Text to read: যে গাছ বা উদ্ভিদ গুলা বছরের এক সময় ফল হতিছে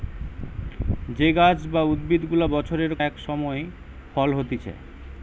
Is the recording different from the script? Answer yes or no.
no